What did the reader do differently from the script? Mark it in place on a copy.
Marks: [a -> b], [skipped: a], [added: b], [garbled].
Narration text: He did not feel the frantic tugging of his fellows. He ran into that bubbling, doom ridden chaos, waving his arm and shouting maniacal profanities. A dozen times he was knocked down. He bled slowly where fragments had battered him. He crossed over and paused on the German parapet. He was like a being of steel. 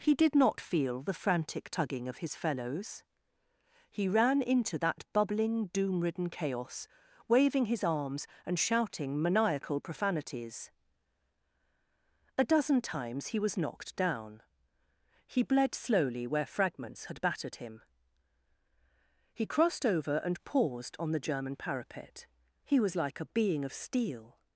He did not feel the frantic tugging of his fellows. He ran into that bubbling, doom ridden chaos, waving his [arm -> arms] and shouting maniacal profanities. A dozen times he was knocked down. He bled slowly where fragments had battered him. He crossed over and paused on the German parapet. He was like a being of steel.